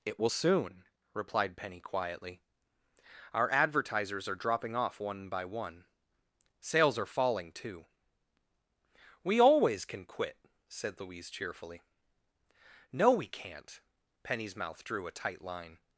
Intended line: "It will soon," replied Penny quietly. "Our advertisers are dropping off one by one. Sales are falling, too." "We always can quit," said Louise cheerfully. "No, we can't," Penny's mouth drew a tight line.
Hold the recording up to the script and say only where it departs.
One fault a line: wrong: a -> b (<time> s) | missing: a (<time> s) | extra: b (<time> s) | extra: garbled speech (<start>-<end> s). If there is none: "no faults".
no faults